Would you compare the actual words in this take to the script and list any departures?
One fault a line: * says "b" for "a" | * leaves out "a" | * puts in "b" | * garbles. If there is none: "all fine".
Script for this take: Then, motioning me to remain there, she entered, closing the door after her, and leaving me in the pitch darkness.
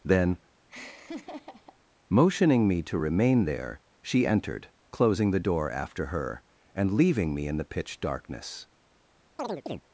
all fine